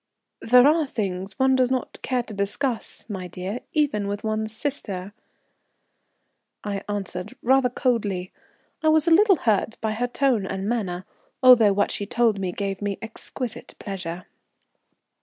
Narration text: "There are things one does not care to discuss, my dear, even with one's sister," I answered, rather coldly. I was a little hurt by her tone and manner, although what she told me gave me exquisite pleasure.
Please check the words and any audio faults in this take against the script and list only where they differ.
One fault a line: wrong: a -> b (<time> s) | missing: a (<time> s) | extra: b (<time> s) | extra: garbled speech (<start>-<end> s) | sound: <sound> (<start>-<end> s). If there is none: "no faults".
no faults